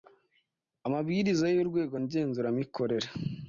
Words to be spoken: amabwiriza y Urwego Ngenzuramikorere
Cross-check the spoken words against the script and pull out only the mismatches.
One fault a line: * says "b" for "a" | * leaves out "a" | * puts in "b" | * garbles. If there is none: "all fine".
all fine